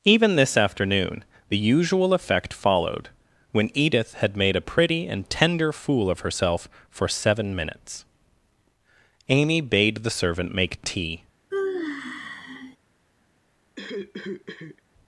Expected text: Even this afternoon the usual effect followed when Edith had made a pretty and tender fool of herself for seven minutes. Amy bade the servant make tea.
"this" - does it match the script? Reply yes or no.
yes